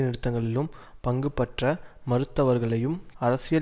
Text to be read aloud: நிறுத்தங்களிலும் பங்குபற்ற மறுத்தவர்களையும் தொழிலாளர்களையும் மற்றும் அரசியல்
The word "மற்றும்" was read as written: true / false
false